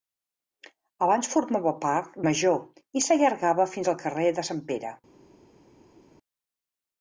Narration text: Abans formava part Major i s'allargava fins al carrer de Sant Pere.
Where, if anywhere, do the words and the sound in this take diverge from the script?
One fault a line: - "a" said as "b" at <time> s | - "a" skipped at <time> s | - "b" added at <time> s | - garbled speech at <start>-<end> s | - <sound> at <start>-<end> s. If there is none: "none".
none